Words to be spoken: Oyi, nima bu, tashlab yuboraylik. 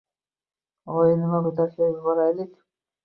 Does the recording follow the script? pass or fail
pass